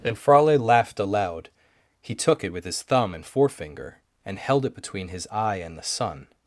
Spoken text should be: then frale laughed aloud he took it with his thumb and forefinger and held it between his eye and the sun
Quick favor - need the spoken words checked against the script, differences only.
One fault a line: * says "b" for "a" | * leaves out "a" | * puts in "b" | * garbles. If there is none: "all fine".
* says "and" for "then"